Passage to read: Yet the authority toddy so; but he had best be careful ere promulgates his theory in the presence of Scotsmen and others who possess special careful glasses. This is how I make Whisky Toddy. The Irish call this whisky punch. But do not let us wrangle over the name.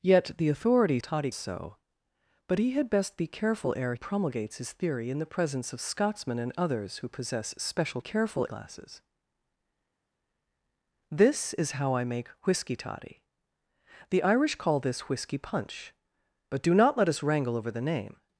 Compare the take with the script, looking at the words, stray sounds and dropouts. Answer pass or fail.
pass